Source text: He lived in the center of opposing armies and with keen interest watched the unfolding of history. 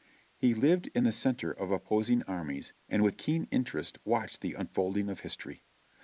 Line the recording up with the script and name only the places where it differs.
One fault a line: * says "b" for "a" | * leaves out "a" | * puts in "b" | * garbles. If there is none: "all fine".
all fine